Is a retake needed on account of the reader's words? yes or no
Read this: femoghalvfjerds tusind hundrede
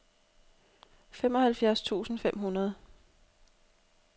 yes